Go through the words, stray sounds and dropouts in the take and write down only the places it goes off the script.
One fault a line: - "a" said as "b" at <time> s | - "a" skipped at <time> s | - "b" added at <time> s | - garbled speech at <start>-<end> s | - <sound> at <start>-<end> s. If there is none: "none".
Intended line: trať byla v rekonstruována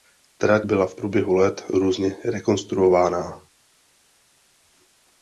- "průběhu let různě" added at 0.9 s